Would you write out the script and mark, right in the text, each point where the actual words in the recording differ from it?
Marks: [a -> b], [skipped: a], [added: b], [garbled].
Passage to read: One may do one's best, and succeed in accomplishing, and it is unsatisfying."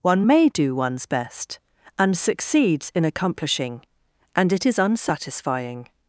One may do one's best, and [succeed -> succeeds] in accomplishing, and it is unsatisfying."